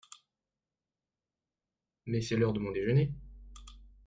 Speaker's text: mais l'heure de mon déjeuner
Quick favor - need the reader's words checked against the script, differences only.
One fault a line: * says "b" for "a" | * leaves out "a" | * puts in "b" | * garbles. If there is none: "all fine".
* puts in "c'est"